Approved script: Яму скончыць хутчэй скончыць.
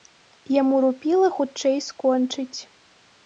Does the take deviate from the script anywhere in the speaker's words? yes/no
yes